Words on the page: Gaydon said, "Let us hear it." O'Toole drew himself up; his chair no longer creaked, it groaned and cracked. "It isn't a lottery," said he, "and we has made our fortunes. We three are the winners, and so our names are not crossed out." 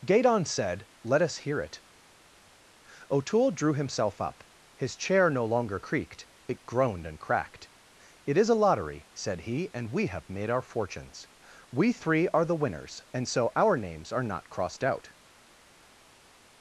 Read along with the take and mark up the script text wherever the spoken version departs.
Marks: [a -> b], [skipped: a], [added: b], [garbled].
Gaydon said, "Let us hear it." O'Toole drew himself up; his chair no longer creaked, it groaned and cracked. "It [isn't -> is] a lottery," said he, "and we [has -> have] made our fortunes. We three are the winners, and so our names are not crossed out."